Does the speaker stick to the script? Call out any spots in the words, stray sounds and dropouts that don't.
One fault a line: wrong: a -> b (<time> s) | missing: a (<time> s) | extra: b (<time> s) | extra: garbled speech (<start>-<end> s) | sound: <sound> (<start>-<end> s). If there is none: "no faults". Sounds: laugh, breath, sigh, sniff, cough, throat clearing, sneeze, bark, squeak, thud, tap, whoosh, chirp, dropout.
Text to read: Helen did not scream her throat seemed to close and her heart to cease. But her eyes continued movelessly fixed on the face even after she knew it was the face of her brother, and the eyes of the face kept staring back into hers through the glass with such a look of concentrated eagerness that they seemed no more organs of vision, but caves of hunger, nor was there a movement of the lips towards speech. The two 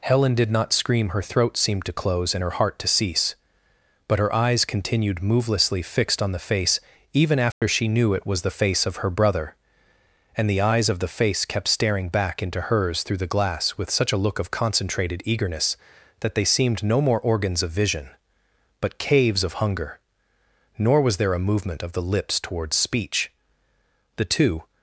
sound: dropout (7.5-7.6 s)